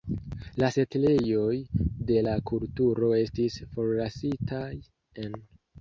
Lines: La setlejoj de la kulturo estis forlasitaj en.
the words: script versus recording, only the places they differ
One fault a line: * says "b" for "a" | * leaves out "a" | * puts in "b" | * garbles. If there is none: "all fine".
all fine